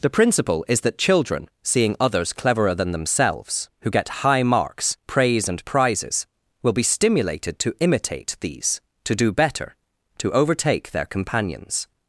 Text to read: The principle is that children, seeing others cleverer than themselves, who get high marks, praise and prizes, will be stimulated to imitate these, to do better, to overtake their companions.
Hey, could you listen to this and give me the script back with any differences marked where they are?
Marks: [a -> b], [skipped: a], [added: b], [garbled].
The principle is that children, seeing others cleverer than themselves, who get high marks, praise and prizes, will be stimulated to imitate these, to do better, to overtake their companions.